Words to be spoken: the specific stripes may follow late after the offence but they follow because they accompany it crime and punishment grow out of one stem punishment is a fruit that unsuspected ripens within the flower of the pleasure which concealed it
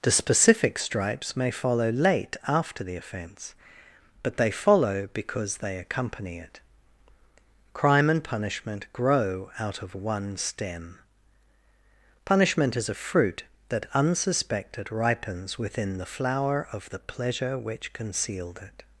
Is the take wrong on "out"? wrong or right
right